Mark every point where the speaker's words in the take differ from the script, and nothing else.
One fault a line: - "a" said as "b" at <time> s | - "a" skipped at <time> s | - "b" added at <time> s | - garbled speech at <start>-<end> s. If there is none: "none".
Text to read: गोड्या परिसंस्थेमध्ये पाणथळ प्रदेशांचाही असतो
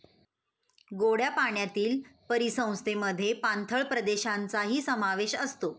- "पाण्यातील" added at 1.3 s
- "समावेश" added at 4.8 s